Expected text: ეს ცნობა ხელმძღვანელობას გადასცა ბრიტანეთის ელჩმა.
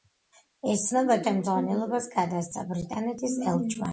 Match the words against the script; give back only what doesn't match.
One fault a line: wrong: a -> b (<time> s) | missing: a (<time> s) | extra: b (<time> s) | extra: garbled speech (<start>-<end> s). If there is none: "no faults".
no faults